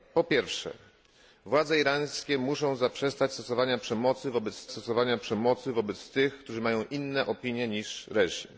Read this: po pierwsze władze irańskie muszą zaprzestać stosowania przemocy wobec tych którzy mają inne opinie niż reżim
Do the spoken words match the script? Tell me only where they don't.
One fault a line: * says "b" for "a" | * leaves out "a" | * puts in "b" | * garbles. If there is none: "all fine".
* puts in "stosowania przemocy wobec"